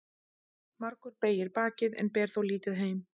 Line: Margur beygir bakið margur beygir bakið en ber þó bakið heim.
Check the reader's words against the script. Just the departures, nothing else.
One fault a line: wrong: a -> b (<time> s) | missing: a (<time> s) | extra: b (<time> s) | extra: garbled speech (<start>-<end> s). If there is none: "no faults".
missing: margur beygir bakið (2.0 s)
wrong: bakið -> lítið (2.5 s)